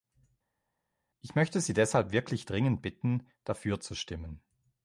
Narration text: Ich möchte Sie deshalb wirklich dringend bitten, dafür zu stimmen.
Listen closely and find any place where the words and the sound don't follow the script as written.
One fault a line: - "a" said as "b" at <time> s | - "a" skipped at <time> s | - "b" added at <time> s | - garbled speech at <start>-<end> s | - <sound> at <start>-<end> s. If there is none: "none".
none